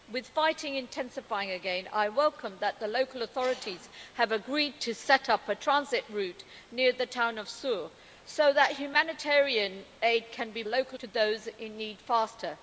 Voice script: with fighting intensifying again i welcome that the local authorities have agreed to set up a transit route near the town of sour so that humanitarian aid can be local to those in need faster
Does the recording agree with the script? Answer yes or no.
yes